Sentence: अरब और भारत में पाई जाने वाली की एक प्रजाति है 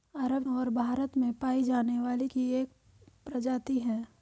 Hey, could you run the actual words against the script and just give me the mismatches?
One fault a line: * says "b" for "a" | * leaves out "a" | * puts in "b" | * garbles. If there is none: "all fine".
all fine